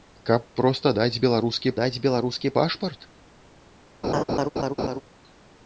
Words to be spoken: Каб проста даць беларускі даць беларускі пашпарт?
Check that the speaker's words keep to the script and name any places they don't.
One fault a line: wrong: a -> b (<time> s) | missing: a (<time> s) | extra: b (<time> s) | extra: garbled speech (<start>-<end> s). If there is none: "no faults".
no faults